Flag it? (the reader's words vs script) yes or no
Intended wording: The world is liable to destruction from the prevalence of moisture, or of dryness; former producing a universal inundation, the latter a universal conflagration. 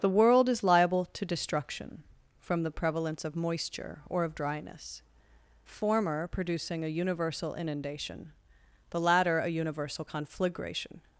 no